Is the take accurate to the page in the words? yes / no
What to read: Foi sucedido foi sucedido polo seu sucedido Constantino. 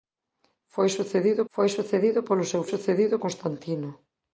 yes